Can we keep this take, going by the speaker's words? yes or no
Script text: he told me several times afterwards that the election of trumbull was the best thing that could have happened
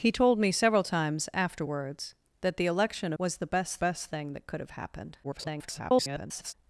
no